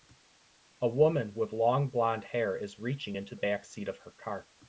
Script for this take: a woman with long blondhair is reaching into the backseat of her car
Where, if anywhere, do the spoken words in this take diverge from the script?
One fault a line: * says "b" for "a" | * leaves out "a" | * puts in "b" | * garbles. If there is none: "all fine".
* leaves out "the"